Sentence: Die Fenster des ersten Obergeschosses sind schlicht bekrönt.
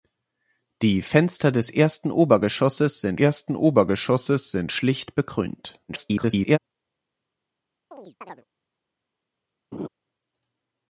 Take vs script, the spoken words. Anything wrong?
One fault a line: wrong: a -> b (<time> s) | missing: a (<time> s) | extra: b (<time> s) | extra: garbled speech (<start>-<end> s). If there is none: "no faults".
extra: ersten Obergeschosses sind (3.1 s)
extra: garbled speech (5.9-6.6 s)